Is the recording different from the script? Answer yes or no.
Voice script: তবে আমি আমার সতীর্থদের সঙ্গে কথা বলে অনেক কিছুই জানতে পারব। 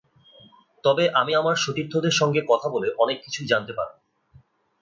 no